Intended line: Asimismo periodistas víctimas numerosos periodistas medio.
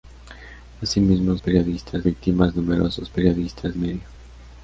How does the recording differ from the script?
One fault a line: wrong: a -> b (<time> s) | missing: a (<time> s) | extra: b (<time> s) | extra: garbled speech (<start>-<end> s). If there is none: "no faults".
no faults